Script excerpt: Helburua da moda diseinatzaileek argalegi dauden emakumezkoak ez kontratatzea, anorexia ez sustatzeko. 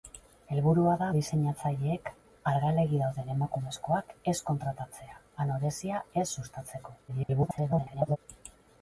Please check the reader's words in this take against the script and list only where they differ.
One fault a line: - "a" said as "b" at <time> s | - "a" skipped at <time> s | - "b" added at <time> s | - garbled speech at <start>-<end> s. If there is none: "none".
- "moda" skipped at 1.1 s
- garbled speech at 7.1-8.2 s